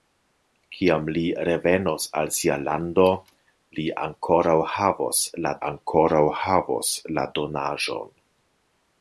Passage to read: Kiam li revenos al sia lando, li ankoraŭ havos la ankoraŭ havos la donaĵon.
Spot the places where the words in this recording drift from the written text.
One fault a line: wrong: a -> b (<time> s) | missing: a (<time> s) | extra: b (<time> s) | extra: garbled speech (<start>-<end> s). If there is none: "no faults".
no faults